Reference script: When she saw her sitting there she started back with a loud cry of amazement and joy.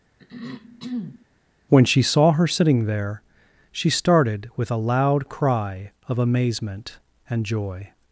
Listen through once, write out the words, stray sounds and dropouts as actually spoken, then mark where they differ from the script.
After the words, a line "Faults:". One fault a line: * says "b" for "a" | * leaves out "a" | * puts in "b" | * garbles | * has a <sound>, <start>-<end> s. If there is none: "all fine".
When she saw her sitting there she started with a loud cry of amazement and joy.
Faults:
* has a throat clearing, 0.2-1.3 s
* leaves out "back"